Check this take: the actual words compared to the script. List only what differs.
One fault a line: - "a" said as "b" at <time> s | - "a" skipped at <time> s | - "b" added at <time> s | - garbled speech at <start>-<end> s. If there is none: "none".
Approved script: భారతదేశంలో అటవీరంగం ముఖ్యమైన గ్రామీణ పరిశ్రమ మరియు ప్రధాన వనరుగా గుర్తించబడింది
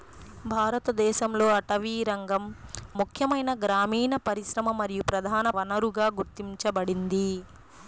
none